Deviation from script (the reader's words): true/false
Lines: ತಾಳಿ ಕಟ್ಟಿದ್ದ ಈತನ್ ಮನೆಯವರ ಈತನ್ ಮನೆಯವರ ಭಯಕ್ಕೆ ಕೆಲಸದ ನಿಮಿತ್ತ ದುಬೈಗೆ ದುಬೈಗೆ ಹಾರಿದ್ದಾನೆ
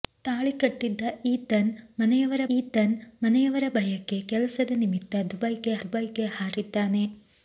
false